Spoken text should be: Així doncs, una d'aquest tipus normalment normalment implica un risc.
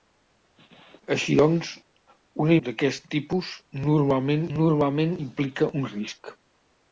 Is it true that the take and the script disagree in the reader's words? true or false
false